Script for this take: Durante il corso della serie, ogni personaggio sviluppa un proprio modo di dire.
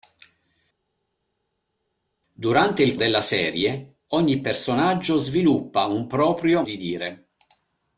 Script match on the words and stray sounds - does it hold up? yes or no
no